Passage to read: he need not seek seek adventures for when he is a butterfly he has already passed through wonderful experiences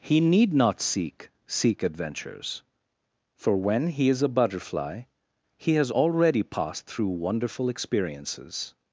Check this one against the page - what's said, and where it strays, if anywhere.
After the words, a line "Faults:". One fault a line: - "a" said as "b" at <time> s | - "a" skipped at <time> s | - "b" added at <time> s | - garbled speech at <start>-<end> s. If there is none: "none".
he need not seek seek adventures for when he is a butterfly he has already passed through wonderful experiences
Faults:
none